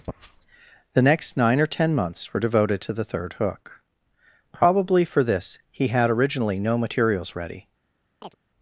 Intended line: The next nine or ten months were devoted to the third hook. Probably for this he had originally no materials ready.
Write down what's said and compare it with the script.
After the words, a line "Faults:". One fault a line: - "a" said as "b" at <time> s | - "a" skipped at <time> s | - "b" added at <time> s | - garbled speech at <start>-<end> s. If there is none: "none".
The next nine or ten months were devoted to the third hook. Probably for this he had originally no materials ready.
Faults:
none